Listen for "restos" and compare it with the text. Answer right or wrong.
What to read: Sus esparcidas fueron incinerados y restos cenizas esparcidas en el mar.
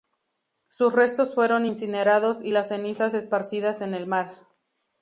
wrong